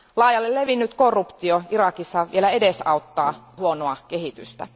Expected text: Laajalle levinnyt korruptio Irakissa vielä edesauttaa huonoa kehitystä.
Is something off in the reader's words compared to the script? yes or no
no